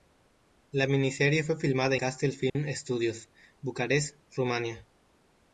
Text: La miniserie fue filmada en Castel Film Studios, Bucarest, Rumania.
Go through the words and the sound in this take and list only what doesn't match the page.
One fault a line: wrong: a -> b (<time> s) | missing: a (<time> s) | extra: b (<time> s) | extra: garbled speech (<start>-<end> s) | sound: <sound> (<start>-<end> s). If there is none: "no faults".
missing: en (1.9 s)
sound: dropout (2.5-2.6 s)